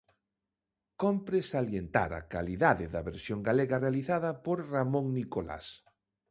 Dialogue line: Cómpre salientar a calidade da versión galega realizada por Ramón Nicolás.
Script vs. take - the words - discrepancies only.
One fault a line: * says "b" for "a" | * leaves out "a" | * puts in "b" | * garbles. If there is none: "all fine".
all fine